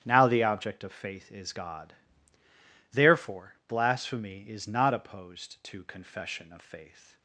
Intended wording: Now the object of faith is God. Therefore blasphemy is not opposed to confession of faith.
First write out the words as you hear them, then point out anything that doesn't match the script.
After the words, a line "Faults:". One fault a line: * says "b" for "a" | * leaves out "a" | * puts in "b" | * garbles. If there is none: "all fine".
Now the object of faith is God. Therefore blasphemy is not opposed to confession of faith.
Faults:
all fine